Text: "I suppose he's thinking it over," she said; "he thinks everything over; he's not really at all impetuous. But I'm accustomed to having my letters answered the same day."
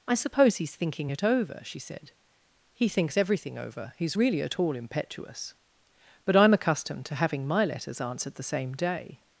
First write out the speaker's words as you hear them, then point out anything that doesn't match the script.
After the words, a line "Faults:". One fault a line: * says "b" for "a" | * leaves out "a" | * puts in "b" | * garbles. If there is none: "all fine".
"I suppose he's thinking it over," she said; "he thinks everything over; he's really at all impetuous. But I'm accustomed to having my letters answered the same day."
Faults:
* leaves out "not"